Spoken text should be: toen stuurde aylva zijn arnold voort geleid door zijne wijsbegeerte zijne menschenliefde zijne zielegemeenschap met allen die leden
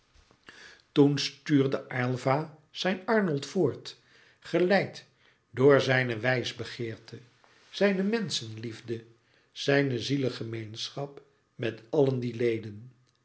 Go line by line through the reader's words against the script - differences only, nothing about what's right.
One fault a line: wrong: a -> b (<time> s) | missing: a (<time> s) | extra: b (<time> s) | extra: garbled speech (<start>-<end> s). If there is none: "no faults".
no faults